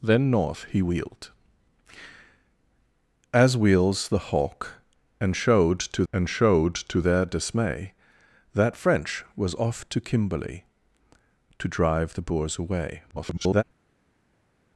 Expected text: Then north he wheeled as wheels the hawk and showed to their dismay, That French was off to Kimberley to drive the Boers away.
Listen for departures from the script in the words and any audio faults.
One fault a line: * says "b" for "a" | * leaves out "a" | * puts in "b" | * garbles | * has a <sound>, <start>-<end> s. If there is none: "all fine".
* puts in "and showed to"
* garbles